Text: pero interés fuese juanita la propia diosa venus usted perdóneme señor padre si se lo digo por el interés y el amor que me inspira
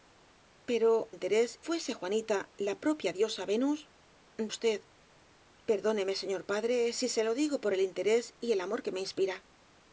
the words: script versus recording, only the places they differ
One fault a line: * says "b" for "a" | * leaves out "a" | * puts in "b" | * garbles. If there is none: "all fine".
all fine